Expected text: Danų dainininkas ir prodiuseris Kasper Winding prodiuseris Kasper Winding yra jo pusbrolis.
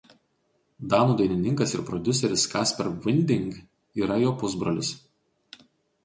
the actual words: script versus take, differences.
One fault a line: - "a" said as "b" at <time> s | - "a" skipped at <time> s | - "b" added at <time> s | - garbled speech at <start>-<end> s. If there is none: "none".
- "prodiuseris Kasper Winding" skipped at 3.5 s